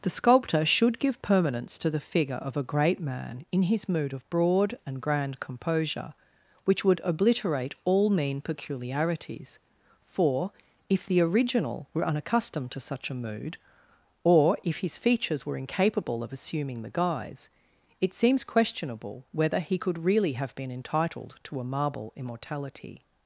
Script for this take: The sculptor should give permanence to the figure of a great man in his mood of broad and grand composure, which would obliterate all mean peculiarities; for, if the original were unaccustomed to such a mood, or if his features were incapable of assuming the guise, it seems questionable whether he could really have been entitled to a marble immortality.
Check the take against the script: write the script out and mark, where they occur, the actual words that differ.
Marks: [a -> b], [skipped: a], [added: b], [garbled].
The sculptor should give permanence to the figure of a great man in his mood of broad and grand composure, which would obliterate all mean peculiarities; for, if the original were unaccustomed to such a mood, or if his features were incapable of assuming the guise, it seems questionable whether he could really have been entitled to a marble immortality.